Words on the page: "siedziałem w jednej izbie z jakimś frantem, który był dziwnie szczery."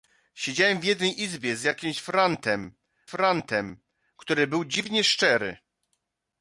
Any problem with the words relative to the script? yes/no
yes